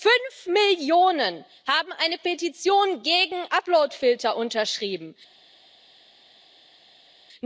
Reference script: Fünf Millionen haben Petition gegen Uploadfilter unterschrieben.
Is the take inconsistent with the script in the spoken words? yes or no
yes